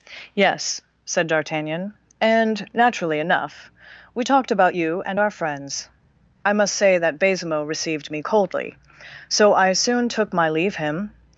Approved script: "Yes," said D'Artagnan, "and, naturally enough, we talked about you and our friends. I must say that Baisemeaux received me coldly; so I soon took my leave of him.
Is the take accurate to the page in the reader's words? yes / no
no